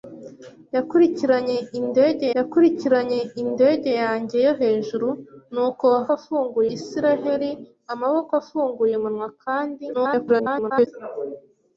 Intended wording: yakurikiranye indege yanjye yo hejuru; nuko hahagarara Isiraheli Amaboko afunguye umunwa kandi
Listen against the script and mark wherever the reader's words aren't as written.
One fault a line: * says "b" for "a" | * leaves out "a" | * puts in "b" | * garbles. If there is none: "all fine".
* puts in "yakurikiranye indege"
* says "afunguye" for "hahagarara"
* garbles